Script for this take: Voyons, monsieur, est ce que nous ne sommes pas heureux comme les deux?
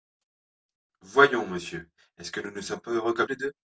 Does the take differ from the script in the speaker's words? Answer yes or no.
no